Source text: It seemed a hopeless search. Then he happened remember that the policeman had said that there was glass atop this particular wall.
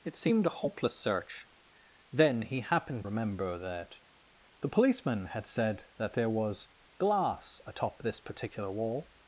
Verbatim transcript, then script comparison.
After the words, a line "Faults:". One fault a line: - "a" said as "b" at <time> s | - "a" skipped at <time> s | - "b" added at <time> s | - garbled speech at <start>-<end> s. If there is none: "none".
It seemed a hopeless search. Then he happened remember that the policeman had said that there was glass atop this particular wall.
Faults:
none